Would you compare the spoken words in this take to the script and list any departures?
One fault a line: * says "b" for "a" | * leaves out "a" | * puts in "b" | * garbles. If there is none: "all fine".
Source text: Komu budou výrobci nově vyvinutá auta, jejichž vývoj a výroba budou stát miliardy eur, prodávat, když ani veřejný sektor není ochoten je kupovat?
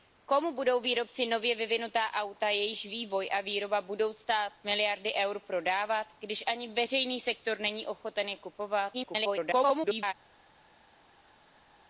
* garbles